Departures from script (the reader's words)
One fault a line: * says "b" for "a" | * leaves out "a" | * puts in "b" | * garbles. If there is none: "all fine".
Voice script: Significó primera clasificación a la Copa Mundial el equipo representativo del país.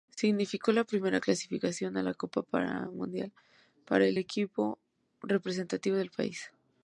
* puts in "la"
* puts in "para"